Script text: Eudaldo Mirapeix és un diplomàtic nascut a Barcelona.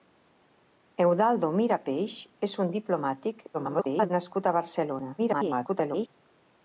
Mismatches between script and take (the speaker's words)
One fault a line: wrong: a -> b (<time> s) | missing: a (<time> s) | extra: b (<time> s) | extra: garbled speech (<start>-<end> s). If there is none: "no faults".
extra: garbled speech (3.5-4.1 s)
extra: garbled speech (5.2-6.1 s)